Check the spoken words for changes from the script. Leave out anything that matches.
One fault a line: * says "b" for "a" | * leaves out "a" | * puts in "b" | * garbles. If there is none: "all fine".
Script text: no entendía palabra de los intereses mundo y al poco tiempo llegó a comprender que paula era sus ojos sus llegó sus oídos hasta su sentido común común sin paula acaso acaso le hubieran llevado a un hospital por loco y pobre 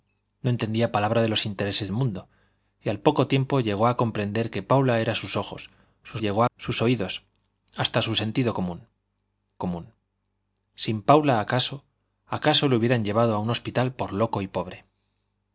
all fine